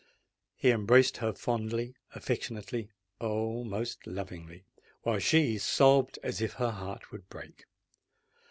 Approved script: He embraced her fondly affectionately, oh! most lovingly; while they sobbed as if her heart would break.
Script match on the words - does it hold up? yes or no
no